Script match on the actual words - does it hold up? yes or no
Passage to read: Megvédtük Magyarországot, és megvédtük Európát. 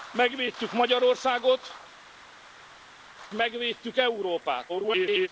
no